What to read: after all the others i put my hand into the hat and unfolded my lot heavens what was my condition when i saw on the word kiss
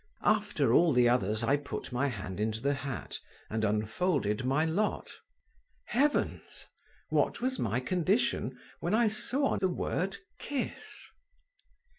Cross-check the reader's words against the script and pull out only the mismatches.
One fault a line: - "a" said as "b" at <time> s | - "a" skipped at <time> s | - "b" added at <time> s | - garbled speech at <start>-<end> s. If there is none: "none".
none